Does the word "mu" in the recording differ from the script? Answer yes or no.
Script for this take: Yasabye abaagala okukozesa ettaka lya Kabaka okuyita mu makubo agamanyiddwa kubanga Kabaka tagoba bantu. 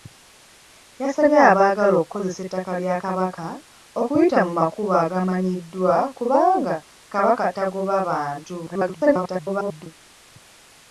no